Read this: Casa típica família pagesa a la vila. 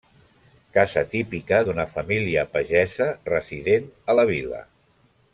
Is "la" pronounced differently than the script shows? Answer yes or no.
no